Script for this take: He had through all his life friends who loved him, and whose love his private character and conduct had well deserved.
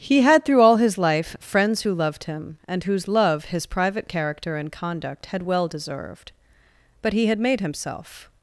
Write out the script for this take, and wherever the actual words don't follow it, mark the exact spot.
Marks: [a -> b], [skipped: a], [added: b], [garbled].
He had through all his life friends who loved him, and whose love his private character and conduct had well deserved. [added: But he had made himself]